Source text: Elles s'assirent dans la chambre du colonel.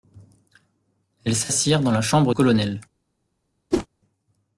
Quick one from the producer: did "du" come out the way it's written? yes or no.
no